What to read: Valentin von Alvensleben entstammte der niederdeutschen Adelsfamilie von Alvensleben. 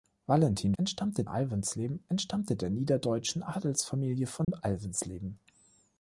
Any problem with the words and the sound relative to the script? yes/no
yes